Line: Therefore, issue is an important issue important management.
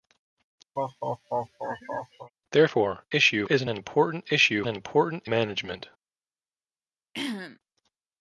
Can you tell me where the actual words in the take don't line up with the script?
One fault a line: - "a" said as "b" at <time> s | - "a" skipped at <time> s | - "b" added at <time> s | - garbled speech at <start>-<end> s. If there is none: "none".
none